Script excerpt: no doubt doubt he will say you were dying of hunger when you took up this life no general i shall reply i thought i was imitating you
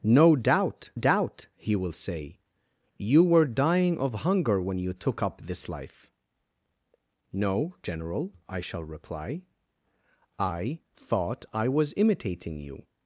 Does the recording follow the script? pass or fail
pass